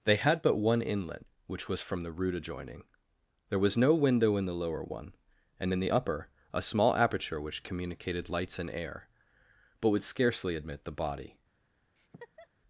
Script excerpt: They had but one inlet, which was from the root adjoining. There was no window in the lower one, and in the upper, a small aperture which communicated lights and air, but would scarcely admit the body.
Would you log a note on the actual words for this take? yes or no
no